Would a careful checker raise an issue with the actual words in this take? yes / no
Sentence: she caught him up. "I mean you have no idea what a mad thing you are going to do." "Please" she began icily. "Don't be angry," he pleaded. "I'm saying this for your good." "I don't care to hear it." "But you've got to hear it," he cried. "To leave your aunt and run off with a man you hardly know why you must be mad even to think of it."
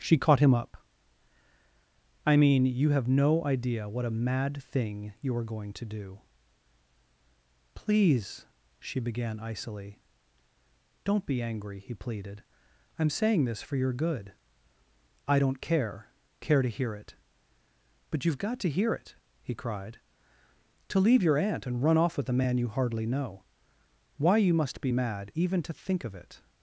yes